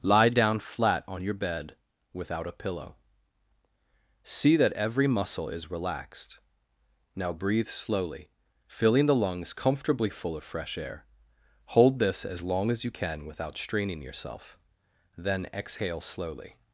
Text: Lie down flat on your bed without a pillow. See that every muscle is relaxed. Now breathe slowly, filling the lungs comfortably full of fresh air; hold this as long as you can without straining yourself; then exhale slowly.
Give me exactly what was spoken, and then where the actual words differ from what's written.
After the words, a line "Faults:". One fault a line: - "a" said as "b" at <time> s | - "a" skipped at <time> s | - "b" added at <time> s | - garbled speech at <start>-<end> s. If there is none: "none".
Lie down flat on your bed without a pillow. See that every muscle is relaxed. Now breathe slowly, filling the lungs comfortably full of fresh air; hold this as long as you can without straining yourself; then exhale slowly.
Faults:
none